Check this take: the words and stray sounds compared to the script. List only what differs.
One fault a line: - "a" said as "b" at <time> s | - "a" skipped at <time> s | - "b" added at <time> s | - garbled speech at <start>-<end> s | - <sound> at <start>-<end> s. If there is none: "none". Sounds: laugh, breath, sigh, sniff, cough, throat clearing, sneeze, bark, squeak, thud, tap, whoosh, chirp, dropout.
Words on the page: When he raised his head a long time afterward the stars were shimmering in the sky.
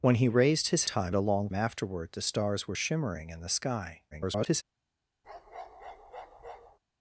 - "head" said as "time" at 0.8 s
- "time" skipped at 1.5 s
- garbled speech at 4.1-4.6 s
- bark at 5.2-6.8 s